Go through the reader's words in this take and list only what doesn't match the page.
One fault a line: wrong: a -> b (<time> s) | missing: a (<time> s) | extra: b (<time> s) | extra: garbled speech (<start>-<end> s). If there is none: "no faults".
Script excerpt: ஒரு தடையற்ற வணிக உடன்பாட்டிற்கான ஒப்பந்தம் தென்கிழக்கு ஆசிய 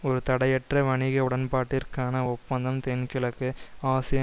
no faults